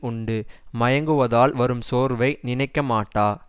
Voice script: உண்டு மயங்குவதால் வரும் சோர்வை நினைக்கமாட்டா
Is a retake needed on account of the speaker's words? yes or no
no